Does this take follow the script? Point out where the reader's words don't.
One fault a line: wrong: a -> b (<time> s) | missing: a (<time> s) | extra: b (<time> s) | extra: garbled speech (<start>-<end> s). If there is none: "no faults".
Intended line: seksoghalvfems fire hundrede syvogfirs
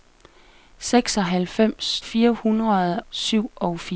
no faults